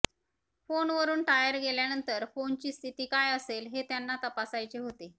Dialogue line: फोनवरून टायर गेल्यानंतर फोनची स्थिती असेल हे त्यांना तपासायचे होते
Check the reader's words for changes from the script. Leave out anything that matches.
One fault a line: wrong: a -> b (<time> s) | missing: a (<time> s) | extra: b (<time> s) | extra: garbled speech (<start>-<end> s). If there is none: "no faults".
extra: काय (3.1 s)